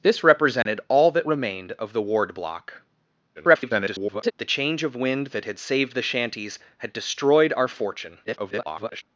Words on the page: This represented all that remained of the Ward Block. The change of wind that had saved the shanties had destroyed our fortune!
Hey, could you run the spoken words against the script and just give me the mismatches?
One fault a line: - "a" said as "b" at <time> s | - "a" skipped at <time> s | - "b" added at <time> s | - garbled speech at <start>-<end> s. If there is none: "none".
- garbled speech at 3.3-4.3 s
- garbled speech at 8.2-9.0 s